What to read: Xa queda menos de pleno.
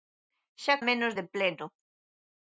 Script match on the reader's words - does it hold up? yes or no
no